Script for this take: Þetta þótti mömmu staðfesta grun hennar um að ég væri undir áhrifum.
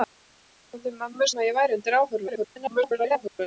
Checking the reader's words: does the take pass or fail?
fail